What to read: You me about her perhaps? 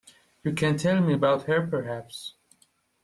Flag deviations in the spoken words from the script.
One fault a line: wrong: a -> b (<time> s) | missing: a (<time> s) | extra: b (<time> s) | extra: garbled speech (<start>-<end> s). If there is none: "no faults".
extra: can tell (0.6 s)